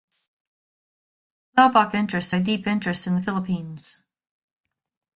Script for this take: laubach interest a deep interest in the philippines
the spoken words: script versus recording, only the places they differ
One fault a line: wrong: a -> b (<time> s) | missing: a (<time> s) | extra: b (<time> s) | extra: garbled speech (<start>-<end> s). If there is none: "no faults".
no faults